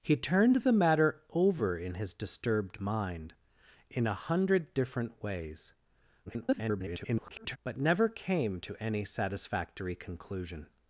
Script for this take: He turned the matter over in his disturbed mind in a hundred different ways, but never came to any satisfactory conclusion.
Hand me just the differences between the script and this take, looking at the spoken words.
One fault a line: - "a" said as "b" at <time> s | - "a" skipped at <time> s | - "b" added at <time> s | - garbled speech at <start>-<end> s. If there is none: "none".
- garbled speech at 6.3-7.6 s